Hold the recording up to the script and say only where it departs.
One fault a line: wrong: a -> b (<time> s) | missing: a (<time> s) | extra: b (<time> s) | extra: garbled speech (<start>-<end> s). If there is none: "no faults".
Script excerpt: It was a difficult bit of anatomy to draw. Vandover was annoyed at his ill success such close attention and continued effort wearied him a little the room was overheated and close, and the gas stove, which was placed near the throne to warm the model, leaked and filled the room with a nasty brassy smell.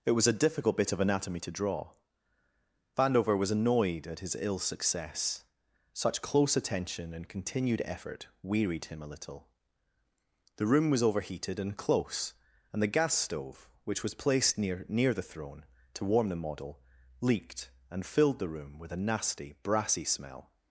extra: near (14.9 s)